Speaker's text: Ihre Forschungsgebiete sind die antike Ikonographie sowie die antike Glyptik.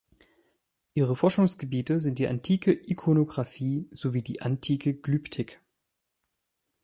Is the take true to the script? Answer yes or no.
yes